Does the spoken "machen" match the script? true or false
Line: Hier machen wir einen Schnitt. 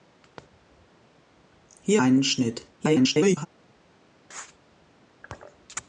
false